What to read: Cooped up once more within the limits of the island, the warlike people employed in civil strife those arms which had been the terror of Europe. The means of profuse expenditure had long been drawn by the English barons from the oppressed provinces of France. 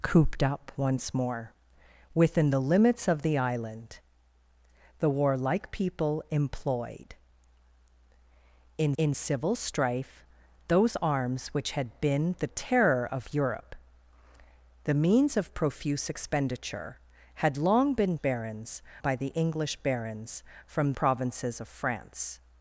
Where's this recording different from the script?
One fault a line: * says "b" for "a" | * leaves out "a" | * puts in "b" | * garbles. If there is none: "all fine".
* puts in "in"
* says "barons" for "drawn"
* leaves out "the oppressed"